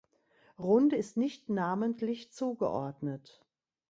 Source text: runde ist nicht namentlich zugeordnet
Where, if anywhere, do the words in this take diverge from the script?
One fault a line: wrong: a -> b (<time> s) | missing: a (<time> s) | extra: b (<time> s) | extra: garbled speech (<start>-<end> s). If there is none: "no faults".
no faults